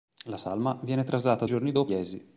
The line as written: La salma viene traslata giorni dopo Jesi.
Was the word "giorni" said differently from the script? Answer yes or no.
no